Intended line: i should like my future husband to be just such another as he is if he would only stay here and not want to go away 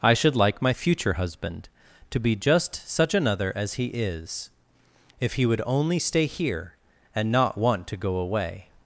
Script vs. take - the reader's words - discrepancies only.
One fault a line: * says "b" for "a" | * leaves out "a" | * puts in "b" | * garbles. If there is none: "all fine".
all fine